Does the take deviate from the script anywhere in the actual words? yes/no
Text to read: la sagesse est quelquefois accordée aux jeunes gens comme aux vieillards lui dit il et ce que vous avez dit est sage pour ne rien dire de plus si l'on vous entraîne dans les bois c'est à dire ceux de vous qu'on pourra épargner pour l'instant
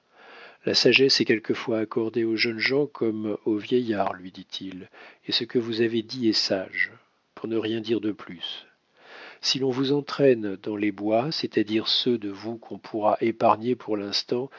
no